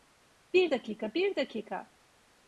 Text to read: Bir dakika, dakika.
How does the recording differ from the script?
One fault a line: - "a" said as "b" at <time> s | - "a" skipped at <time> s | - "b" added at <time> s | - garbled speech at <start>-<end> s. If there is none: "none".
- "bir" added at 1.1 s